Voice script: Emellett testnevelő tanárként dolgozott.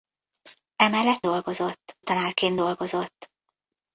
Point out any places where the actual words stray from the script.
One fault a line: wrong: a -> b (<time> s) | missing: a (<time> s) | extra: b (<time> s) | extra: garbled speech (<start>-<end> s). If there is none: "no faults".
wrong: testnevelő -> dolgozott (1.2 s)